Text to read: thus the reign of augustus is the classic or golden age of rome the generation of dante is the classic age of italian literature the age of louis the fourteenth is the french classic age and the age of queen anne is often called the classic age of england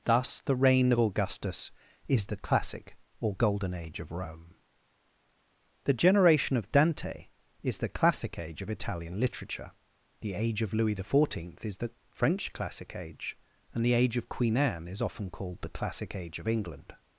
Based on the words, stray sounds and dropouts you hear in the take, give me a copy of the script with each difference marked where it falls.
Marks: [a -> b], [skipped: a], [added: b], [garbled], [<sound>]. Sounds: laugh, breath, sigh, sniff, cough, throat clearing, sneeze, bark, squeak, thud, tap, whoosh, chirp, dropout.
thus the reign of augustus is the classic or golden age of rome the generation of dante is the classic age of italian literature the age of louis the fourteenth is the french classic age and the age of queen anne is often called the classic age of england